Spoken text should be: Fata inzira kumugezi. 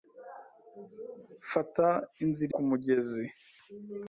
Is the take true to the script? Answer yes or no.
yes